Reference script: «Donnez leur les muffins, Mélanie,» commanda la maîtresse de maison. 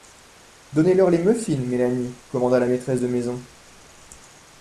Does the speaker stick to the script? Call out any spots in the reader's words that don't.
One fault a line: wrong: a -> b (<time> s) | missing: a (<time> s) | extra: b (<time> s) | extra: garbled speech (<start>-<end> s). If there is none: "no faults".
no faults